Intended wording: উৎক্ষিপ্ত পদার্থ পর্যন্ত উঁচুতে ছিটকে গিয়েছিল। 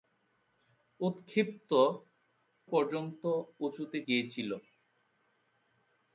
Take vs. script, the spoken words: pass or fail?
fail